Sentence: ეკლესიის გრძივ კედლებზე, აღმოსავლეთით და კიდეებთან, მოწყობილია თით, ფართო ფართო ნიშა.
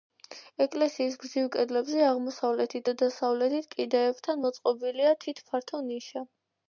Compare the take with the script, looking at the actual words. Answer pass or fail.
fail